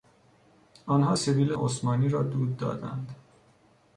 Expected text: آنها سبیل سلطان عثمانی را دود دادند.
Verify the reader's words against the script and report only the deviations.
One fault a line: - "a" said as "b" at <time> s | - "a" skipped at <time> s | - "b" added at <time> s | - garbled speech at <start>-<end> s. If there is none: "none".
- "سلطان" skipped at 1.5 s